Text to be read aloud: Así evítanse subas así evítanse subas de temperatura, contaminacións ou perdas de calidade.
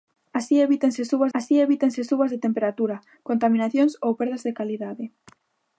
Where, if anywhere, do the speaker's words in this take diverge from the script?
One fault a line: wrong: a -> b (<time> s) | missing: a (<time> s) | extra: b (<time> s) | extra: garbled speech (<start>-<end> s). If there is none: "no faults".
no faults